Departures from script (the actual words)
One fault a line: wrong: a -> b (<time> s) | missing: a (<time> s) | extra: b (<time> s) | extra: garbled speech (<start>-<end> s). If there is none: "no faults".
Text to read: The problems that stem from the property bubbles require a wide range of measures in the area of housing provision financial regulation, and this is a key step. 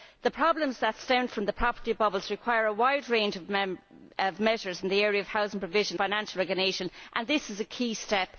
no faults